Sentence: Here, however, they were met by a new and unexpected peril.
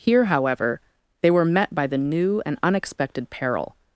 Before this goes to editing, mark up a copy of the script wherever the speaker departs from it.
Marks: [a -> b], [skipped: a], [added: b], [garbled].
Here, however, they were met by [a -> the] new and unexpected peril.